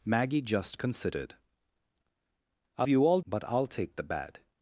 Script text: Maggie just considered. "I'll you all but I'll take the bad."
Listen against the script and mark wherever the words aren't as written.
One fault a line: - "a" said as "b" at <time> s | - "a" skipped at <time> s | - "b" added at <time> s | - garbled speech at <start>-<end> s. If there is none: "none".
none